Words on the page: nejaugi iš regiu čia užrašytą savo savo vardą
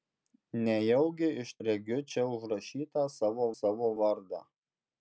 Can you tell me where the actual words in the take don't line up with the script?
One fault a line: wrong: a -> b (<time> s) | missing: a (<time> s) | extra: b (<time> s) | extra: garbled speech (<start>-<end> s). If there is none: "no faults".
no faults